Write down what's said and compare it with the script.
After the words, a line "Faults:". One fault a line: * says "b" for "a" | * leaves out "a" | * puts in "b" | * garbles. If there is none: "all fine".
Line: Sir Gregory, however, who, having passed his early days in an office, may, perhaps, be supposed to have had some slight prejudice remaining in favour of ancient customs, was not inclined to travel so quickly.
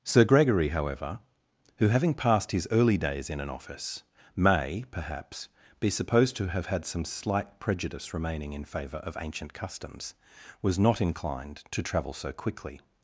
Sir Gregory, however, who, having passed his early days in an office, may, perhaps, be supposed to have had some slight prejudice remaining in favour of ancient customs, was not inclined to travel so quickly.
Faults:
all fine